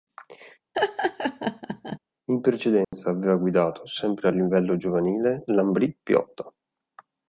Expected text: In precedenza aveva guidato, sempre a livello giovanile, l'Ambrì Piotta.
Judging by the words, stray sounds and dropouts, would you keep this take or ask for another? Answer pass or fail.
fail